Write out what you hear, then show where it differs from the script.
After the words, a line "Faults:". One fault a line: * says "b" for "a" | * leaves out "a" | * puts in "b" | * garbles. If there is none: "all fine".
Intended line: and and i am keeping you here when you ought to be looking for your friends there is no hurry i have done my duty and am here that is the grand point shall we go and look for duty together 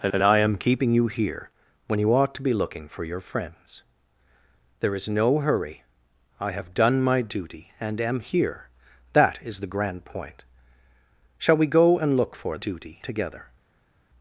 and and i am keeping you here when you ought to be looking for your friends there is no hurry i have done my duty and am here that is the grand point shall we go and look for duty together
Faults:
all fine